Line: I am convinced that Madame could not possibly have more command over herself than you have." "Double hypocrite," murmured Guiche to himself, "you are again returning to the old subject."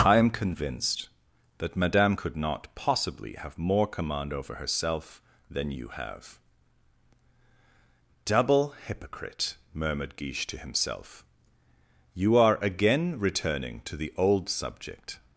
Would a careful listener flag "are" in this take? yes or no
no